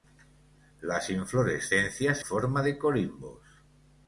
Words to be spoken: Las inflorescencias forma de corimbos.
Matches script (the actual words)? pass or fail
pass